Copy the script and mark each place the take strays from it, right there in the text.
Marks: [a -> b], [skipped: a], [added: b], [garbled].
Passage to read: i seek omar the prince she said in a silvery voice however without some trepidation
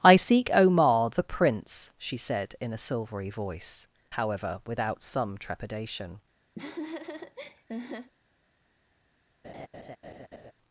i seek omar the prince she said in a silvery voice however without some trepidation